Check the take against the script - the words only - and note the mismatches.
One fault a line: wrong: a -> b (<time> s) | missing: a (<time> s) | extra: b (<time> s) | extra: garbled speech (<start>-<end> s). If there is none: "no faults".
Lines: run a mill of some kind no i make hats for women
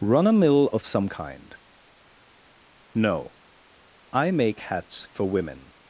no faults